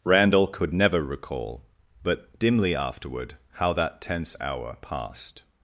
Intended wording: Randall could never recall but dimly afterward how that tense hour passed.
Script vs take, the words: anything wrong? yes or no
no